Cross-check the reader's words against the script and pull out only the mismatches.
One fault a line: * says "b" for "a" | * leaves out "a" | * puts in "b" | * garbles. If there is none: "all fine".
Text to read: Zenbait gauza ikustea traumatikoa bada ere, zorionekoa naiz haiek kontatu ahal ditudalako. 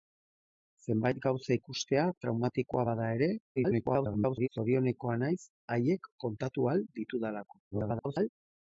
* garbles
* garbles